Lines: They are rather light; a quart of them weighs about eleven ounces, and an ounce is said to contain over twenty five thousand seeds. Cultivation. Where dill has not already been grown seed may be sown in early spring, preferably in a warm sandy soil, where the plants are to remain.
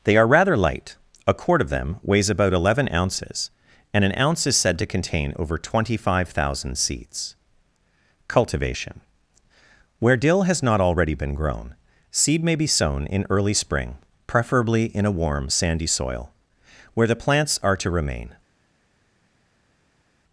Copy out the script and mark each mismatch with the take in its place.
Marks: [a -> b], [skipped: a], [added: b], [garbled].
They are rather light; a quart of them weighs about eleven ounces, and an ounce is said to contain over twenty five thousand seeds. Cultivation. Where dill has not already been grown seed may be sown in early spring, preferably in a warm sandy soil, where the plants are to remain.